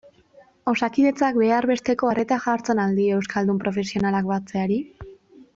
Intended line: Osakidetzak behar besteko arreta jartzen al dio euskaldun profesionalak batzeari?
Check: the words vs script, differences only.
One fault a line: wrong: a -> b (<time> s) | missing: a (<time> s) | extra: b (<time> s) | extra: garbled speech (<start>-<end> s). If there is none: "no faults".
no faults